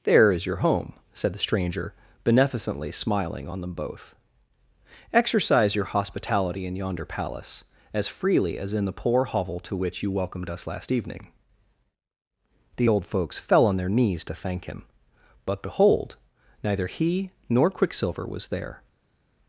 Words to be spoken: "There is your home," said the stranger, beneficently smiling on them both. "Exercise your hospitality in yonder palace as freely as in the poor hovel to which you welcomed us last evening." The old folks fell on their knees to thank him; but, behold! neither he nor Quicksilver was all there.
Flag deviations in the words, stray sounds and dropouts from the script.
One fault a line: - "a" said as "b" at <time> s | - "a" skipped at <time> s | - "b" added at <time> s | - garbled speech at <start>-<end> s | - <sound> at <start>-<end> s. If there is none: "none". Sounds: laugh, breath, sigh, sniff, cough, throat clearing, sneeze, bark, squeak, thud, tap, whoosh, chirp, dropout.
- "all" skipped at 18.5 s